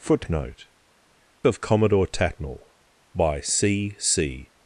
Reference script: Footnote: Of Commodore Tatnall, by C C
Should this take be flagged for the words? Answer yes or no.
no